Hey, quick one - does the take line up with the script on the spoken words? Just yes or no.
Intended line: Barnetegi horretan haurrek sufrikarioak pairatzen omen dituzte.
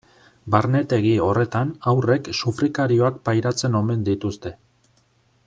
yes